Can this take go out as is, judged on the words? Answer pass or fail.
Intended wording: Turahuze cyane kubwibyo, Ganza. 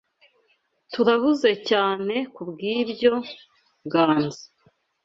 pass